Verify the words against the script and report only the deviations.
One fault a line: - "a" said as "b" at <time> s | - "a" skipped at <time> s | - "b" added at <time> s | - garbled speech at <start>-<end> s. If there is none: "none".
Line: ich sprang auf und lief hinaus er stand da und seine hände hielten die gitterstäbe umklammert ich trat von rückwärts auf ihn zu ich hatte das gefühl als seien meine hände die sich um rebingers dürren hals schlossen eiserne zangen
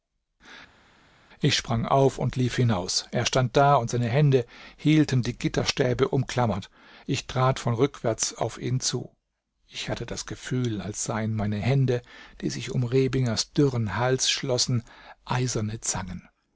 none